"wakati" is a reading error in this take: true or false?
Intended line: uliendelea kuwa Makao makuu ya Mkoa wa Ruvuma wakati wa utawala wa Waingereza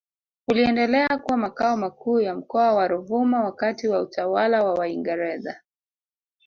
false